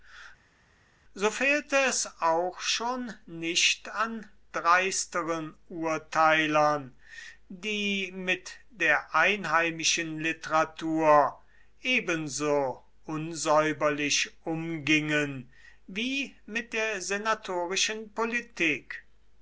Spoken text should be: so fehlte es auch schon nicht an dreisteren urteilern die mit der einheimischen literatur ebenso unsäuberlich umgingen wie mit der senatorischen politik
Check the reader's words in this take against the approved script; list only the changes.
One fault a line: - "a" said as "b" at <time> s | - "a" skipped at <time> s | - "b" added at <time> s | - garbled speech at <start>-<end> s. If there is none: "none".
none